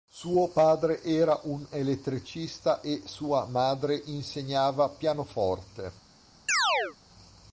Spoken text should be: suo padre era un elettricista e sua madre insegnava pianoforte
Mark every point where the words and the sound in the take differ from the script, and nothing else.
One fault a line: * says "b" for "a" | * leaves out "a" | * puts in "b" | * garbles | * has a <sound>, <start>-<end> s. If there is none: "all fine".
* has a chirp, 6.5-7.0 s